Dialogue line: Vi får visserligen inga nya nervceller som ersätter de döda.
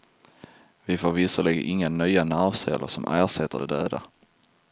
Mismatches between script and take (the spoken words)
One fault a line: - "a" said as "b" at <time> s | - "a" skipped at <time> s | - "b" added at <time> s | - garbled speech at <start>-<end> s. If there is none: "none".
none